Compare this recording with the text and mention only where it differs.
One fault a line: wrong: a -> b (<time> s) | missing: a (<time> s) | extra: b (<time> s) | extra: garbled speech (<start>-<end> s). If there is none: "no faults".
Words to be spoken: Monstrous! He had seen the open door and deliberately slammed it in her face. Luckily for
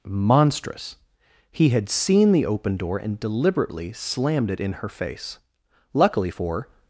no faults